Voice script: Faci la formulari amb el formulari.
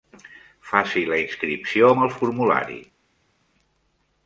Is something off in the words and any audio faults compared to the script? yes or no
yes